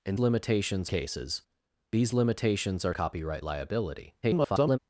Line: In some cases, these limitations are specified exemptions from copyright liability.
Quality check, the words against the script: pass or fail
fail